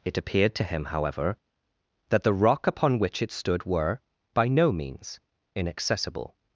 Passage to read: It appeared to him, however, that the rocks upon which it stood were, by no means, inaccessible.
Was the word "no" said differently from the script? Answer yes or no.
no